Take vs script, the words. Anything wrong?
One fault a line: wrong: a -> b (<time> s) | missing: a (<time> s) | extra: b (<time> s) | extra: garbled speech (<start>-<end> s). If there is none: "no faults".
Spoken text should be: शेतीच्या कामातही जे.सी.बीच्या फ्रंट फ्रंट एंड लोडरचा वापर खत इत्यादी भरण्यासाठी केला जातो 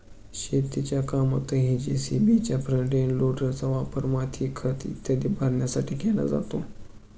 missing: फ्रंट (2.9 s)
extra: माती (4.1 s)